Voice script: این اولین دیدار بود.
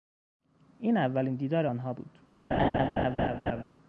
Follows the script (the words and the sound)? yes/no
no